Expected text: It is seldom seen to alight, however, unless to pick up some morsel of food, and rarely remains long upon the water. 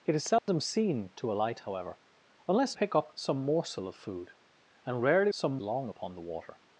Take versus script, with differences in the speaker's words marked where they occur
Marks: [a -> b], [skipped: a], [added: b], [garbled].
It is seldom seen to alight, however, unless [skipped: to] pick up some morsel of food, and rarely [remains -> some] long upon the water.